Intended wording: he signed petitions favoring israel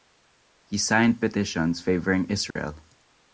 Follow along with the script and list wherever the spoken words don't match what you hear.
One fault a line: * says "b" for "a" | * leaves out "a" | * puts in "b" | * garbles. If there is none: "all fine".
all fine